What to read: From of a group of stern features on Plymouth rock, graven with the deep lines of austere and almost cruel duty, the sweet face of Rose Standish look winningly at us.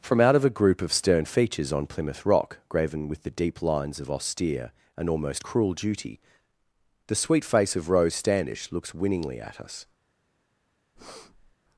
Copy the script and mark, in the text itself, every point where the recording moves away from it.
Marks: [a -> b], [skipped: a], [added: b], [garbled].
From [added: out] of a group of stern features on Plymouth rock, graven with the deep lines of austere and almost cruel duty, the sweet face of Rose Standish [look -> looks] winningly at us.